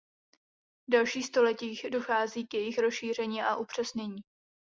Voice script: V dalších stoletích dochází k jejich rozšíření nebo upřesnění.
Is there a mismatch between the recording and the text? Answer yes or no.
yes